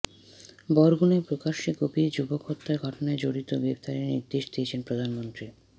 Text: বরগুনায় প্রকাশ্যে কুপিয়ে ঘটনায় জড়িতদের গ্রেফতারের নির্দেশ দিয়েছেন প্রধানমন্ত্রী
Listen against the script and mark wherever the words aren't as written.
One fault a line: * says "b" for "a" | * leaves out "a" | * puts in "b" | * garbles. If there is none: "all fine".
* puts in "যুবক হত্যার"